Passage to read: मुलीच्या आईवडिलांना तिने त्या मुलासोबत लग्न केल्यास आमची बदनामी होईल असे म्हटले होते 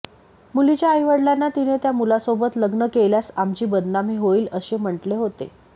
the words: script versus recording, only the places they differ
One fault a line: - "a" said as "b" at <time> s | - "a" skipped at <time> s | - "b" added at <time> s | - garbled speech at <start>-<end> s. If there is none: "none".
none